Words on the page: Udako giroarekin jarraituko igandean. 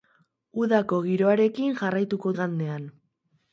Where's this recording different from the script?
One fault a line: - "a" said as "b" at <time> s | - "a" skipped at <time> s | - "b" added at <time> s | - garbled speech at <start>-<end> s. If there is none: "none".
none